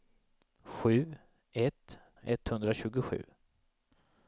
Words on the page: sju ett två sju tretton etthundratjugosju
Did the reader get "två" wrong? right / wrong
wrong